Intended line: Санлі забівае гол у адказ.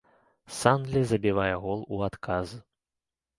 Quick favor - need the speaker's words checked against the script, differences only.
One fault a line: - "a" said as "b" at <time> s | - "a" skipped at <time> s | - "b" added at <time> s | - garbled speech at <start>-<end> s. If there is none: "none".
none